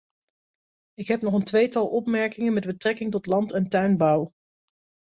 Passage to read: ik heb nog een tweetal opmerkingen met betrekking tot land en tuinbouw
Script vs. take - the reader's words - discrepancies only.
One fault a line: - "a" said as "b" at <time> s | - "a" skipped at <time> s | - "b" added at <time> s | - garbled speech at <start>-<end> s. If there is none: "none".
none